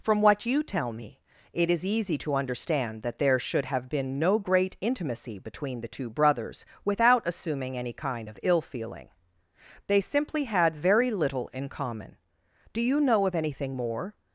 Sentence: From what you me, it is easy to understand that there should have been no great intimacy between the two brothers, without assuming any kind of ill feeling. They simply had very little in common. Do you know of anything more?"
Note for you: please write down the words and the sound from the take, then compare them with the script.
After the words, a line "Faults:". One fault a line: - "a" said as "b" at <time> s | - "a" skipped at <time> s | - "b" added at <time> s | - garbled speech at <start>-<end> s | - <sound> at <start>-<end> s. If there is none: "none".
From what you tell me, it is easy to understand that there should have been no great intimacy between the two brothers, without assuming any kind of ill feeling. They simply had very little in common. Do you know of anything more?"
Faults:
- "tell" added at 0.6 s